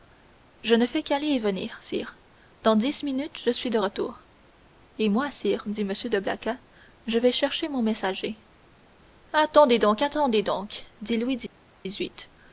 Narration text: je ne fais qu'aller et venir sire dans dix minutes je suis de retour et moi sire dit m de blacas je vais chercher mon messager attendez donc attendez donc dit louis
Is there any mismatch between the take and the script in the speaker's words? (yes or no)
no